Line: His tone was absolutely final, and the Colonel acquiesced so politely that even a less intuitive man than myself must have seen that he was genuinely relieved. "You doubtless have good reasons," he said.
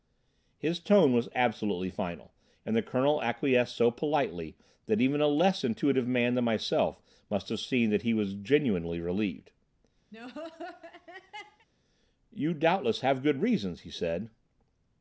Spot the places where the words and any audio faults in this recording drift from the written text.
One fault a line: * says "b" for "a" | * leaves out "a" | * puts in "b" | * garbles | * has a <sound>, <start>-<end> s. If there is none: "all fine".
* has a laugh, 10.1-11.7 s